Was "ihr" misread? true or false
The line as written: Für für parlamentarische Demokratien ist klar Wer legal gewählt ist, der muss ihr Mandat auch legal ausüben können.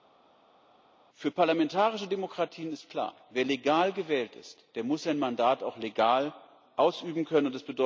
true